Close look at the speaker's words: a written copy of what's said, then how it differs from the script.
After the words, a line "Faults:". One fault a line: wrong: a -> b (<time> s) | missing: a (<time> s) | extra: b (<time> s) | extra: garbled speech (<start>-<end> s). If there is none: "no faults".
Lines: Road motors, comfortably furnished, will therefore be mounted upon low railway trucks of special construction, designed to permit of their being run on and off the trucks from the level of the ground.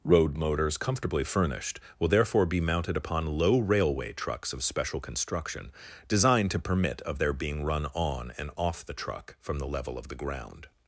Road motors, comfortably furnished, will therefore be mounted upon low railway trucks of special construction, designed to permit of their being run on and off the truck from the level of the ground.
Faults:
wrong: trucks -> truck (8.9 s)